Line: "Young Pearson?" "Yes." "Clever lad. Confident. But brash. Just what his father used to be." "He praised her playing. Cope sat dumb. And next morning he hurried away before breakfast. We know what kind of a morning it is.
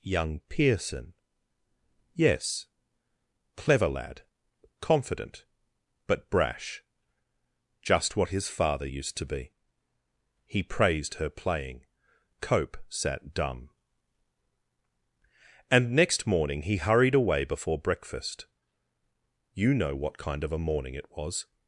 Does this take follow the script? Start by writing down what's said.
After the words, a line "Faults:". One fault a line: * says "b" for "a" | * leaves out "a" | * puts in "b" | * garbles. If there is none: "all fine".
"Young Pearson?" "Yes." "Clever lad. Confident. But brash. Just what his father used to be." "He praised her playing. Cope sat dumb. And next morning he hurried away before breakfast. You know what kind of a morning it was.
Faults:
* says "You" for "We"
* says "was" for "is"